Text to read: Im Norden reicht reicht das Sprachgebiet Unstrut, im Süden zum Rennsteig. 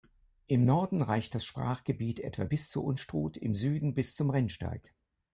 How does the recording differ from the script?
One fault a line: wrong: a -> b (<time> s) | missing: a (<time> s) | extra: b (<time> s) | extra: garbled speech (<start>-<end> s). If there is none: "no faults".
missing: reicht (1.3 s)
extra: etwa bis zur (2.2 s)
extra: bis (4.0 s)